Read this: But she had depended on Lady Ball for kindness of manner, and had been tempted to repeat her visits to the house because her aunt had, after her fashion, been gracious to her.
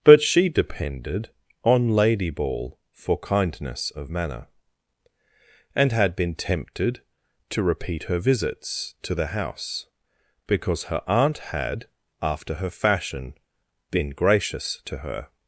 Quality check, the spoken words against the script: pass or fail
fail